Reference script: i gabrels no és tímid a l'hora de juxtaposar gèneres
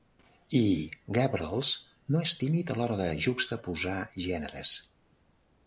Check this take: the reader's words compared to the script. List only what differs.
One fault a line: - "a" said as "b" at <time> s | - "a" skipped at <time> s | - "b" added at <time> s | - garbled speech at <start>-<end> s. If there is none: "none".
none